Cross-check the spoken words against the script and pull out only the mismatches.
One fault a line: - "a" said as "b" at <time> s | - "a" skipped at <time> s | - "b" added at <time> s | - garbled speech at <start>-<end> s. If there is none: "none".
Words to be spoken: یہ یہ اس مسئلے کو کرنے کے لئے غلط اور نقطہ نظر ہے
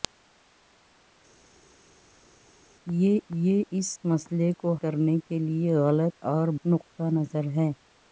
none